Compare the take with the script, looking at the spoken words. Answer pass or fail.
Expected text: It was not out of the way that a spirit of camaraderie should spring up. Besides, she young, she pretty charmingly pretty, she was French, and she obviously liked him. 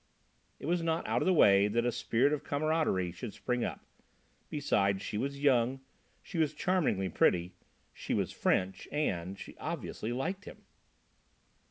fail